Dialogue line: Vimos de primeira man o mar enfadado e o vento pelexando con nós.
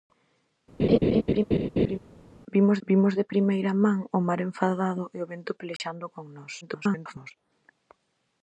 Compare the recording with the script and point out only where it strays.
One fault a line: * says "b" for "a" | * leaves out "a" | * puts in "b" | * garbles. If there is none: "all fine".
* puts in "vimos"
* garbles